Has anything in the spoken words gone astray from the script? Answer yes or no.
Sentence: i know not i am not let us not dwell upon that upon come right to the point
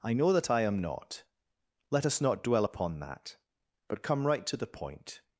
yes